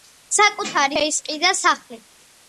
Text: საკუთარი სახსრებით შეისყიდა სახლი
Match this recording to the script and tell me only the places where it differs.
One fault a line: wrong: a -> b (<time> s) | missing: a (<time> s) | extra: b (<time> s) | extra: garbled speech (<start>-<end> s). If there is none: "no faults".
missing: სახსრებით (1.0 s)